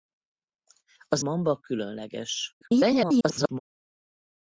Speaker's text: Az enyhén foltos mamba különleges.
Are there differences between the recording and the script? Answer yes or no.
yes